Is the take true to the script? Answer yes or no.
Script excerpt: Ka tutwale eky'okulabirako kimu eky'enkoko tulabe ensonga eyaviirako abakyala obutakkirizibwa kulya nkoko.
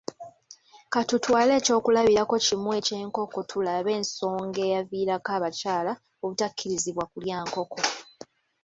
yes